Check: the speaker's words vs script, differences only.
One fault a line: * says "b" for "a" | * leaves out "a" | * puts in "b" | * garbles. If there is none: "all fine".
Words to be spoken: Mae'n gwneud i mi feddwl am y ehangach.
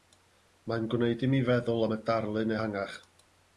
* puts in "darlun"